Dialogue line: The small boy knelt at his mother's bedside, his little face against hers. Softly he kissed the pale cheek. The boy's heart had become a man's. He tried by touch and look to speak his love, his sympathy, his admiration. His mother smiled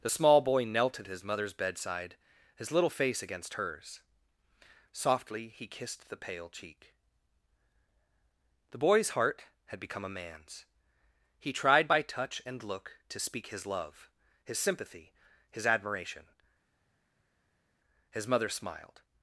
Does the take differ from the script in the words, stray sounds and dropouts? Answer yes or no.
no